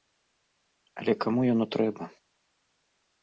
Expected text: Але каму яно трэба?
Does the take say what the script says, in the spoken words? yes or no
yes